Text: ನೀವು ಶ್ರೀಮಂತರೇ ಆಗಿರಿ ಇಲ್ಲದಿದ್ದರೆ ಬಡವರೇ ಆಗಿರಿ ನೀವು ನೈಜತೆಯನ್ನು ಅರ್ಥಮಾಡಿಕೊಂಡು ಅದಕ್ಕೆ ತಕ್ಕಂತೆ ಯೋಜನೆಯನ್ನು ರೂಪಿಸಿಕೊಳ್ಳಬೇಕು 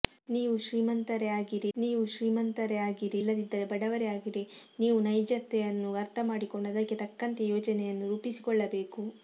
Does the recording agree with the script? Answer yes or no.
no